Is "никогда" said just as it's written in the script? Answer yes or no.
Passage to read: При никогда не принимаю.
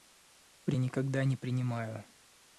yes